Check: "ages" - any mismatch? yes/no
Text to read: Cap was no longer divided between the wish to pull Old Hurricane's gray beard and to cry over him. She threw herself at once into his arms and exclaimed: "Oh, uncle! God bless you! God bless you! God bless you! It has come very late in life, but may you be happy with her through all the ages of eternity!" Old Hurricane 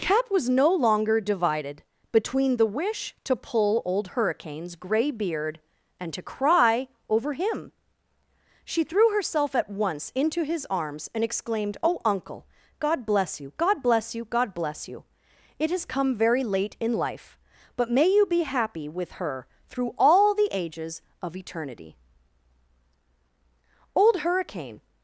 no